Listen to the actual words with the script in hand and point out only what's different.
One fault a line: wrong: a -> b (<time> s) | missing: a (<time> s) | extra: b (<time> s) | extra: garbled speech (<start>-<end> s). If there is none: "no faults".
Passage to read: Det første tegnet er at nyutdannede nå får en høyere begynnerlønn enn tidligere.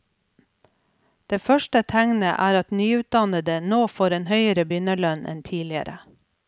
no faults